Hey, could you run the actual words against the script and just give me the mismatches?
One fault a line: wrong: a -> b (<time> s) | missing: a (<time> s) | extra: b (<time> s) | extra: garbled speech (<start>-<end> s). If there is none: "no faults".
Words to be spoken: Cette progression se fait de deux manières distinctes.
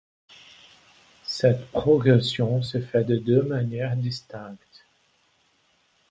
no faults